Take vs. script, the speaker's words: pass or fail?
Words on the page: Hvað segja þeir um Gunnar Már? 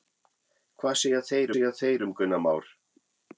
fail